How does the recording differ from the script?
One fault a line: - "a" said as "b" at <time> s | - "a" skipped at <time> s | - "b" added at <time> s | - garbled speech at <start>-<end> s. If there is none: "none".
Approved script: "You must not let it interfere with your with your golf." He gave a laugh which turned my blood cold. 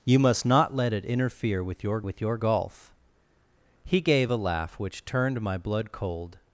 none